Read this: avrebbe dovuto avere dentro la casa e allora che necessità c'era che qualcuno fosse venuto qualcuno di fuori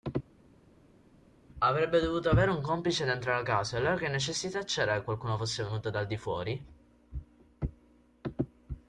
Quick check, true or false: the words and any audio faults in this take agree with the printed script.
false